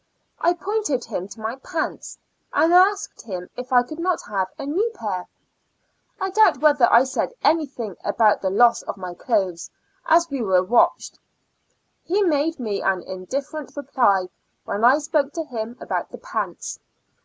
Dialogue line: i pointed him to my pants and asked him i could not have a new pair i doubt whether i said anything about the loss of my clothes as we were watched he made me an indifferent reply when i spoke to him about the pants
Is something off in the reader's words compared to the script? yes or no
yes